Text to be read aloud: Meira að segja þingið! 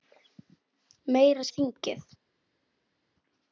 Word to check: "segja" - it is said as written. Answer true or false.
false